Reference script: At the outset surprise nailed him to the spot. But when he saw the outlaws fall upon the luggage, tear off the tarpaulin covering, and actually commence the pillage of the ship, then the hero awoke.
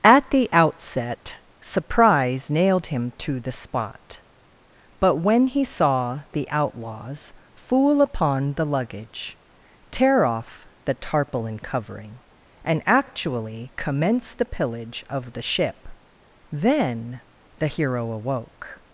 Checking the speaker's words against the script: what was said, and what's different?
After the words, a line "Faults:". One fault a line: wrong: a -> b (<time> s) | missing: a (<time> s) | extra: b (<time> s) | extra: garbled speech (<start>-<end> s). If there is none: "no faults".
At the outset surprise nailed him to the spot. But when he saw the outlaws fool upon the luggage, tear off the tarpaulin covering, and actually commence the pillage of the ship, then the hero awoke.
Faults:
wrong: fall -> fool (7.5 s)